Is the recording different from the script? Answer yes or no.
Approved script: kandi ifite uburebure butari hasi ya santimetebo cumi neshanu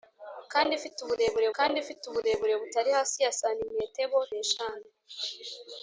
yes